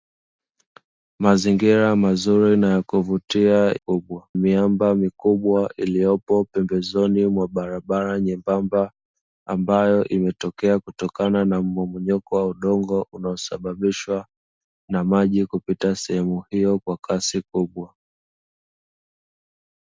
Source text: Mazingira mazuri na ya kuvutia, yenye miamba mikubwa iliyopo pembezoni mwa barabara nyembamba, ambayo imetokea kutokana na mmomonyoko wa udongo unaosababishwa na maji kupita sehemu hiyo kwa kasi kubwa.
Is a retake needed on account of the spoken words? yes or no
yes